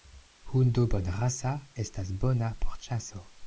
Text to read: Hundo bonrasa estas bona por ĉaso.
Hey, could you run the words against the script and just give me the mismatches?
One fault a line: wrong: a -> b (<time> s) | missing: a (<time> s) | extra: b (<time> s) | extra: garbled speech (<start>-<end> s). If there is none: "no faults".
no faults